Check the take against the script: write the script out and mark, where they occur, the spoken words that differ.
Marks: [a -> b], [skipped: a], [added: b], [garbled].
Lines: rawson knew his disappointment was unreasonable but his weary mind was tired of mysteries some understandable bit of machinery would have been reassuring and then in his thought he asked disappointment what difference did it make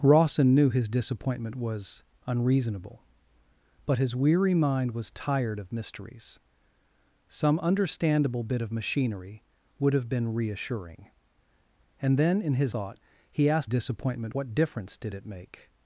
rawson knew his disappointment was unreasonable but his weary mind was tired of mysteries some understandable bit of machinery would have been reassuring and then in his thought he asked disappointment what difference did it make